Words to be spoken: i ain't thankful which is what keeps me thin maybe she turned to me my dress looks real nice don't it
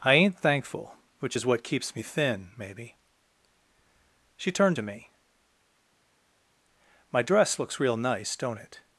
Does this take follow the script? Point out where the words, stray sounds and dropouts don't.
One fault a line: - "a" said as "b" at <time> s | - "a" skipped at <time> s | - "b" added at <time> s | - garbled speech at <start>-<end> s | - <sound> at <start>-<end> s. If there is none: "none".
none